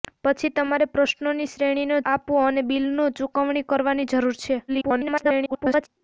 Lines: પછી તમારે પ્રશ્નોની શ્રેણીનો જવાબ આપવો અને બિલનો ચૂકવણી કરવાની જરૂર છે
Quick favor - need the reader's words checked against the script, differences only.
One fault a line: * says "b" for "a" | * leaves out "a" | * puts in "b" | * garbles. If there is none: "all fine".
* leaves out "જવાબ"
* garbles